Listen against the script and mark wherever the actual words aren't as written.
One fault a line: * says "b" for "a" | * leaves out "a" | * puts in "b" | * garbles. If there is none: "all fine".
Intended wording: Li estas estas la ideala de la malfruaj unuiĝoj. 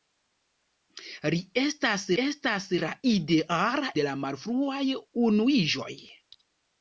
all fine